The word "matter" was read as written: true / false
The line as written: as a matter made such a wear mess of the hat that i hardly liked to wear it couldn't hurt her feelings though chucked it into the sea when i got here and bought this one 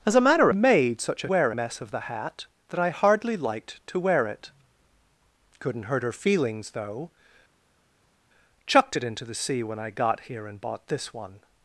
true